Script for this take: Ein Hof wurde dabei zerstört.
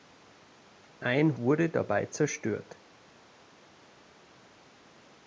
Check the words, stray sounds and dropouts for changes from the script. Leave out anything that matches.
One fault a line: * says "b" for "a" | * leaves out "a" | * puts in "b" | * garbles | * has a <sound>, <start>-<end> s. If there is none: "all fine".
* leaves out "Hof"